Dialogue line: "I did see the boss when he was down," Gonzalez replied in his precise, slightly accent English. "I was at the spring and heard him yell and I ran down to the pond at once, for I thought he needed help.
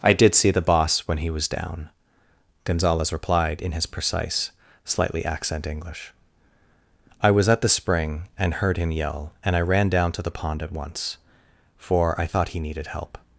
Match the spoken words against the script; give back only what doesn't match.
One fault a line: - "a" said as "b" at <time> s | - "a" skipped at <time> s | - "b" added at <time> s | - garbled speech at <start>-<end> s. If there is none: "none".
none